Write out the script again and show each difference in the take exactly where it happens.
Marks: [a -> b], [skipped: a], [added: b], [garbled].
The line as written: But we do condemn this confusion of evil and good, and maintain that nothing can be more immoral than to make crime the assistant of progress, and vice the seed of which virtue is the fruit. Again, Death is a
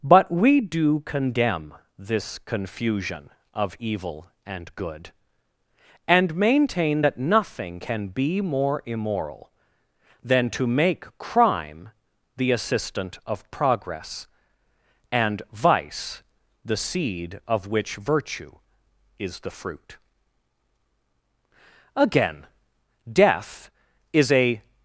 But we do condemn this confusion of evil and good, and maintain that nothing can be more immoral than to make crime the assistant of progress, and vice the seed of which virtue is the fruit. Again, Death is a